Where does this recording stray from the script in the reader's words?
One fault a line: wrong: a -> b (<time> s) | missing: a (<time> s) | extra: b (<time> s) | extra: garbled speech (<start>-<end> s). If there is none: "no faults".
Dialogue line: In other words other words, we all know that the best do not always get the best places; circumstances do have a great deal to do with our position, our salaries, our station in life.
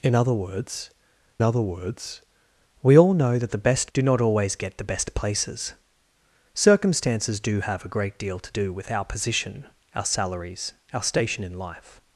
no faults